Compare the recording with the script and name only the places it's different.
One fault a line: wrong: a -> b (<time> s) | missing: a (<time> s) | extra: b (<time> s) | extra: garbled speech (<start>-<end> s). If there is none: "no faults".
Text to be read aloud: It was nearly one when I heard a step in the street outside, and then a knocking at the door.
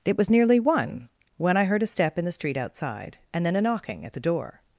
no faults